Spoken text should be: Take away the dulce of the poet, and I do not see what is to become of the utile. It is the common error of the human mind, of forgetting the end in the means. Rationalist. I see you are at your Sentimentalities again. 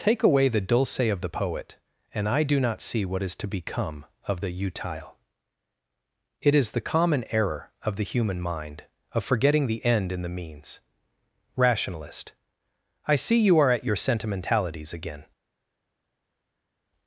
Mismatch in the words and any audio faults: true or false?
false